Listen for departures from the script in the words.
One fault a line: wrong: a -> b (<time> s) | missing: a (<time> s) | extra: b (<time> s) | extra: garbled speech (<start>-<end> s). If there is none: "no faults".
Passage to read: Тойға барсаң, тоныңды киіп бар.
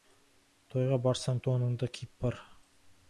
no faults